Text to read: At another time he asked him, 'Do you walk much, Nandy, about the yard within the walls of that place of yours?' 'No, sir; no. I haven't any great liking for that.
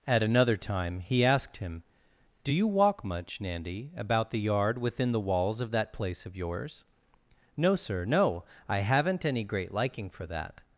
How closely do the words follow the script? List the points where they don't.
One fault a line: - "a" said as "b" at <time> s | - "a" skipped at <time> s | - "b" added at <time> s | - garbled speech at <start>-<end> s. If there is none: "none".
none